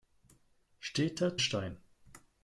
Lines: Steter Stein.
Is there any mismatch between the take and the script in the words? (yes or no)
no